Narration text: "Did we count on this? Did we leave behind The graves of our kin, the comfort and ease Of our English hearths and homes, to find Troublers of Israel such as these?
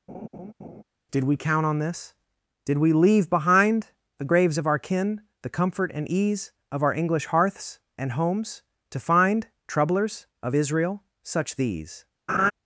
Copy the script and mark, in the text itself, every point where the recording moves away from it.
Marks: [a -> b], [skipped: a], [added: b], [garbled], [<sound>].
[laugh] "Did we count on this? Did we leave behind The graves of our kin, the comfort and ease Of our English hearths and homes, to find Troublers of Israel such [skipped: as] these? [laugh]